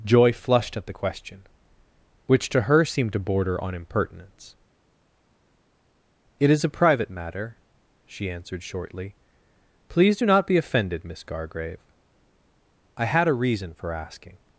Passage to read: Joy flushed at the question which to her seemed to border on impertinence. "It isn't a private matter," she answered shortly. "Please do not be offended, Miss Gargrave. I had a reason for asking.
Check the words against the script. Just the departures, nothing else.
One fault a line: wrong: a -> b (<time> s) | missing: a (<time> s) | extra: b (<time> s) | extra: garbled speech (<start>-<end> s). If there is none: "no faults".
wrong: isn't -> is (6.5 s)